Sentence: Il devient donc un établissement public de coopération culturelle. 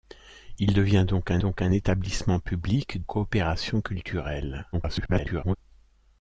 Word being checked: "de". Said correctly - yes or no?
no